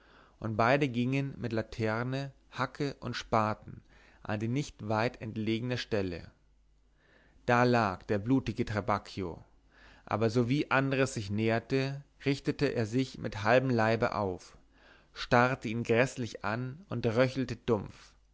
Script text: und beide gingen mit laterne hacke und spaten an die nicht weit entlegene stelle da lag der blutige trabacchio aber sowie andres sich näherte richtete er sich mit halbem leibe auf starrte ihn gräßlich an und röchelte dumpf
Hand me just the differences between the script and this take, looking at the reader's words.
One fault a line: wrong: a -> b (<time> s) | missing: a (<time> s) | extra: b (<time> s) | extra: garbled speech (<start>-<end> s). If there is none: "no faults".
no faults